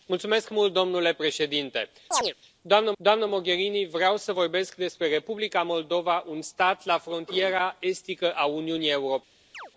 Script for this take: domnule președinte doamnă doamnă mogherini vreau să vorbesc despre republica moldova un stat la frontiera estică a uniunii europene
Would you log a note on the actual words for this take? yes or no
no